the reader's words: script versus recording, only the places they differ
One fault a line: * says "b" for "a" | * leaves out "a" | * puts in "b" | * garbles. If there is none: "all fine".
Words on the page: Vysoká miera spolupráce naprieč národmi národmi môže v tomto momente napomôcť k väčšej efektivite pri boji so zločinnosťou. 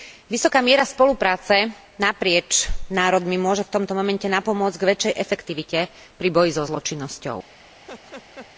* leaves out "národmi"